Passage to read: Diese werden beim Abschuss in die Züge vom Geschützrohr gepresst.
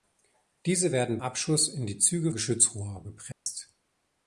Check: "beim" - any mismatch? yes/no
yes